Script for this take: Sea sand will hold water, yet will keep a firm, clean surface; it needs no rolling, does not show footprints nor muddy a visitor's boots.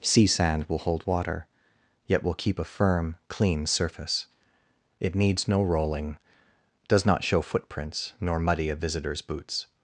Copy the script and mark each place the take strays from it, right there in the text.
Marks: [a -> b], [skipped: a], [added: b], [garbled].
Sea sand will hold water, yet will keep a firm, clean surface; it needs no rolling, does not show footprints nor muddy a visitor's boots.